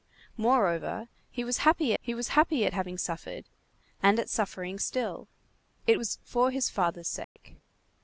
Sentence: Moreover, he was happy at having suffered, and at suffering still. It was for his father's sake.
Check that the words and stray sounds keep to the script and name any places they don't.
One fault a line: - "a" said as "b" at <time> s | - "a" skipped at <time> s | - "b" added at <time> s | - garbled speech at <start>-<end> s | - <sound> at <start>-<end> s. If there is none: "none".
- "he was happy" added at 2.0 s
- dropout at 7.2-7.4 s